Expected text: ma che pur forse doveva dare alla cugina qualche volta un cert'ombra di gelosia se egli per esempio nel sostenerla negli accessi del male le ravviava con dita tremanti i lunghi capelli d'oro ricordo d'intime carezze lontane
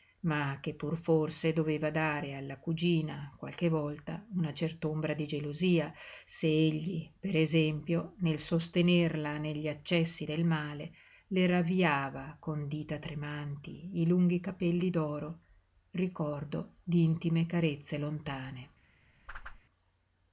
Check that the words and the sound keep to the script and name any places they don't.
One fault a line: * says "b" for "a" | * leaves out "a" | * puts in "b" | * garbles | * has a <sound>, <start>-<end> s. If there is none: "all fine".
* says "una" for "un"
* has a whoosh, 19.3-19.6 s